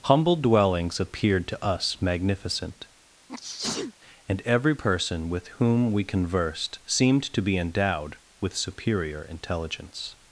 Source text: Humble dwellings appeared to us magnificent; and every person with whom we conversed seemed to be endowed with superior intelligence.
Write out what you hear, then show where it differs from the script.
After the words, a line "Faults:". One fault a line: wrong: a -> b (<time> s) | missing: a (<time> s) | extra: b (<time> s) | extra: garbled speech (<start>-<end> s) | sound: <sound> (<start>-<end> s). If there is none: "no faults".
Humble dwellings appeared to us magnificent; and every person with whom we conversed seemed to be endowed with superior intelligence.
Faults:
sound: sneeze (3.3-3.9 s)